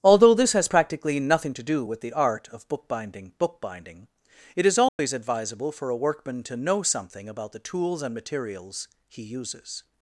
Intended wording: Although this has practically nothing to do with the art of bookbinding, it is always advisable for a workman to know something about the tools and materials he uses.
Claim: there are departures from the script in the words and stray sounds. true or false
true